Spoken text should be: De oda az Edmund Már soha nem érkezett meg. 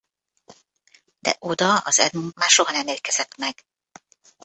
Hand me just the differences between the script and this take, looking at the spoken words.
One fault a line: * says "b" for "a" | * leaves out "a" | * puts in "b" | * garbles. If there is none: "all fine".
all fine